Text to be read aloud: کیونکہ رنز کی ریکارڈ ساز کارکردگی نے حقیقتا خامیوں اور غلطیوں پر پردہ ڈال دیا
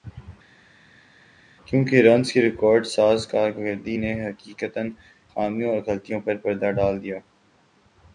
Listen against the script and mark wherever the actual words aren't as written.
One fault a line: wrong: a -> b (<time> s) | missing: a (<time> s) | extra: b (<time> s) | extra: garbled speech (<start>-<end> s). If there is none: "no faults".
no faults